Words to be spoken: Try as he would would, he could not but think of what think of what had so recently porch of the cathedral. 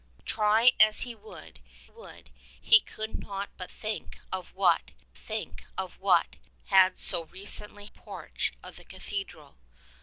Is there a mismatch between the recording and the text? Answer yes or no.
no